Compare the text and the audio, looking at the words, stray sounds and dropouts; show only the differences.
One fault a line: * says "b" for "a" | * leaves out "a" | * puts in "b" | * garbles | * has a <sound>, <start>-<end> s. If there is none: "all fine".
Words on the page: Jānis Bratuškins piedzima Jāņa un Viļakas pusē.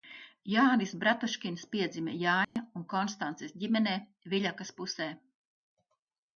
* has a dropout, 2.4-2.6 s
* puts in "Konstances ģimenē"